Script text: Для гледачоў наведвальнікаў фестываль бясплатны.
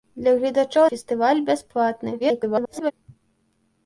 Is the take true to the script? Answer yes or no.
no